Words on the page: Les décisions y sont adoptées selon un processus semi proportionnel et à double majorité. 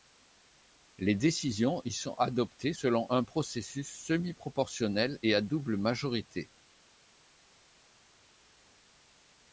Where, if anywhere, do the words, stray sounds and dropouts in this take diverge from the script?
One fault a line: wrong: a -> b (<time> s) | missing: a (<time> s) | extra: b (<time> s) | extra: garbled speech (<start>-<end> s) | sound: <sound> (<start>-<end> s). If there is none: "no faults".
no faults